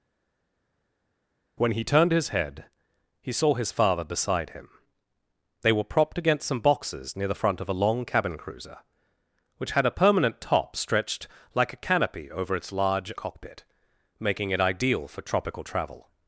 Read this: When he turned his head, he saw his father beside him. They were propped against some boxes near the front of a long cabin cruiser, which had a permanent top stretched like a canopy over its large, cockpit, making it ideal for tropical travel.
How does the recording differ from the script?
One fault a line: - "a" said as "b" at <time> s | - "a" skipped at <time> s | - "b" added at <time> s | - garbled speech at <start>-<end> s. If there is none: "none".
none